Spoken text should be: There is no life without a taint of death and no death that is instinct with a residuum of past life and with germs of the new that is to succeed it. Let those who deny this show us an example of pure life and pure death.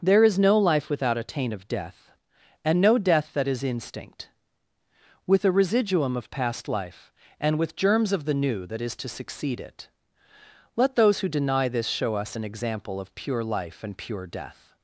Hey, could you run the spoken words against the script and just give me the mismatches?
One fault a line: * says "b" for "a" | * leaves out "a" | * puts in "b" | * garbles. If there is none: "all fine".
all fine